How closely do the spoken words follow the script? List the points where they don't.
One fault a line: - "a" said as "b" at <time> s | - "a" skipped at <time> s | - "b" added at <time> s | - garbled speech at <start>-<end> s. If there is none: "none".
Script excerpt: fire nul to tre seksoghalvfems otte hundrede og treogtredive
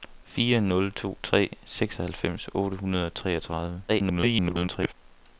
- garbled speech at 3.9-4.9 s